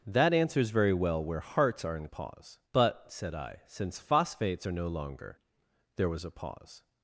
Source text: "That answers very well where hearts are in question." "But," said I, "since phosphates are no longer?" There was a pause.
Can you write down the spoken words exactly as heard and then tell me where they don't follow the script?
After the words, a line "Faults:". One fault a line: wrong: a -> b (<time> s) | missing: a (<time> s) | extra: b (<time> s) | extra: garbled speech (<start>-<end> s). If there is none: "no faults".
"That answers very well where hearts are in pause." "But," said I, "since phosphates are no longer?" There was a pause.
Faults:
wrong: question -> pause (2.1 s)